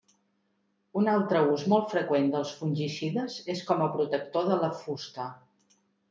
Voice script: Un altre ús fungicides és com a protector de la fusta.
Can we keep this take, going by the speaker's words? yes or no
no